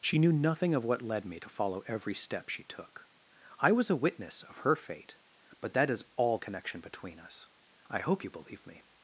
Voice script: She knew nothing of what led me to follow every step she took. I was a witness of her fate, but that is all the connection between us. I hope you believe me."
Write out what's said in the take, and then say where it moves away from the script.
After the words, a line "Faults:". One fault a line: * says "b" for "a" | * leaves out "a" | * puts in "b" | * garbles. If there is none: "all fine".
She knew nothing of what led me to follow every step she took. I was a witness of her fate, but that is all connection between us. I hope you believe me."
Faults:
* leaves out "the"